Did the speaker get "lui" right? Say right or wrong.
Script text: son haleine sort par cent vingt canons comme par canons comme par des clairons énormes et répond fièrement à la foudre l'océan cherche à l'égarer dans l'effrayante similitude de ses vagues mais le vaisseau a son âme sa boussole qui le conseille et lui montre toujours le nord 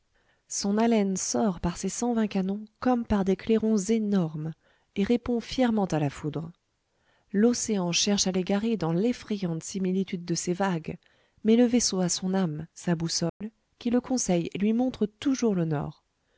right